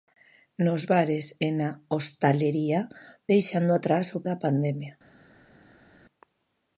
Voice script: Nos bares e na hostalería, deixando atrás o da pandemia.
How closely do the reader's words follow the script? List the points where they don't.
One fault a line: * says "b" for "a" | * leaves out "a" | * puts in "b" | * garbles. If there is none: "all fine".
all fine